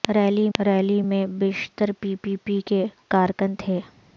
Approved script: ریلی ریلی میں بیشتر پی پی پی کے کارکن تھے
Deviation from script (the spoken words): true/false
false